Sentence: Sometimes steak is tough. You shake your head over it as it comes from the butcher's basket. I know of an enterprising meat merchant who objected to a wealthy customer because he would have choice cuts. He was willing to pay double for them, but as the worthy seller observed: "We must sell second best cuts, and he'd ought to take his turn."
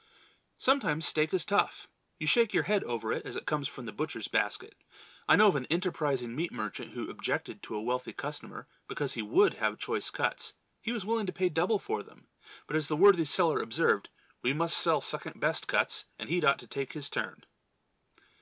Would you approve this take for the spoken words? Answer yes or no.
yes